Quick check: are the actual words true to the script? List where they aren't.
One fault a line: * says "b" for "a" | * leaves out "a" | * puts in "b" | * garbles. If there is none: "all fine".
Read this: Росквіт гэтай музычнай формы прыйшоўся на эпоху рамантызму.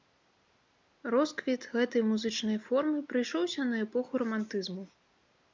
all fine